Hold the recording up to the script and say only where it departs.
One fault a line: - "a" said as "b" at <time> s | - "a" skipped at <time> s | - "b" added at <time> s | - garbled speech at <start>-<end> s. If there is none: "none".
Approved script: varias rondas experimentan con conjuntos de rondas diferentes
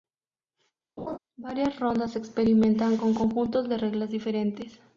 - "rondas" said as "reglas" at 3.8 s